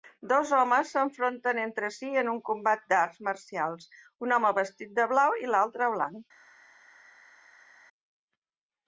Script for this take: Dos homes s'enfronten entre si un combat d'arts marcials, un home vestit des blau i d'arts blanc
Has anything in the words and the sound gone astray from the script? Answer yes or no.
yes